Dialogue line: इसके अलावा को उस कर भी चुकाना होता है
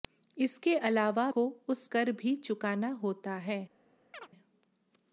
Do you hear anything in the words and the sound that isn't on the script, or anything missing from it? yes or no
yes